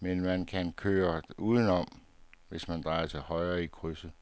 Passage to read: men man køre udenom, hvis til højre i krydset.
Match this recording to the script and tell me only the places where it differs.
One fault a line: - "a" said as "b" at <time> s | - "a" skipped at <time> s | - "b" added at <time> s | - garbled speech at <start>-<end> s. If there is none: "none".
- "kan" added at 0.5 s
- "man drejer" added at 2.7 s